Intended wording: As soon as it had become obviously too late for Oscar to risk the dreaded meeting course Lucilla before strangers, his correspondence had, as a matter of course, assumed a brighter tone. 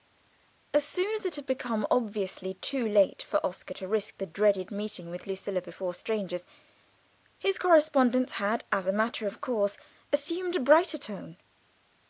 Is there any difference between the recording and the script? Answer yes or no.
yes